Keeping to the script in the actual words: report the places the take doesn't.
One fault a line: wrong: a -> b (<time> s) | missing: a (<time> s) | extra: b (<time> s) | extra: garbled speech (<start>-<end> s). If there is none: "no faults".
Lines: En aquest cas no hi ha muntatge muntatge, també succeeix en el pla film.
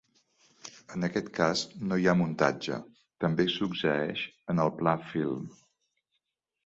missing: muntatge (2.8 s)